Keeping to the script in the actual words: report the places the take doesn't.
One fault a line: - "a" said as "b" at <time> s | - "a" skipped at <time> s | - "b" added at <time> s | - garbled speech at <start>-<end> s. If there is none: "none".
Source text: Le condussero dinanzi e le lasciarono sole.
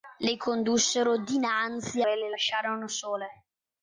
none